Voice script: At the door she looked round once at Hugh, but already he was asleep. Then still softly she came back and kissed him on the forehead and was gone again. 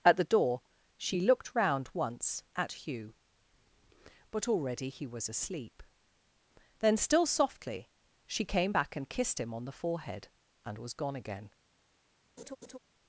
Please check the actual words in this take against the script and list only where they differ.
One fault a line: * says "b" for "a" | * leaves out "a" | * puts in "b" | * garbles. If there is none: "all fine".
all fine